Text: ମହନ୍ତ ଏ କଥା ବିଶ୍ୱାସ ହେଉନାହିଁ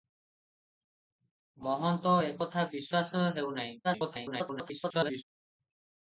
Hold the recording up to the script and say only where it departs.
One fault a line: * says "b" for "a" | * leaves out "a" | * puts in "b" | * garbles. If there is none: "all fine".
* garbles